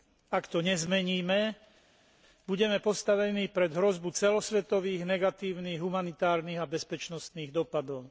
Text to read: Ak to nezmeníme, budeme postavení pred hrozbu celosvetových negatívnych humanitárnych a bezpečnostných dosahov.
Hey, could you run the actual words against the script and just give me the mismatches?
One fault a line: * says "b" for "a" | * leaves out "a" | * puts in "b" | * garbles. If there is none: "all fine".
all fine